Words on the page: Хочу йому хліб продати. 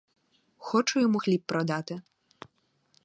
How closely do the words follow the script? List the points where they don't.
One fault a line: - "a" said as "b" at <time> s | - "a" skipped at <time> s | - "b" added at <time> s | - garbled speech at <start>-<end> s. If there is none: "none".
none